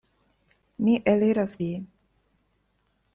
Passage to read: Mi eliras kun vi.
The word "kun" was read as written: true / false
false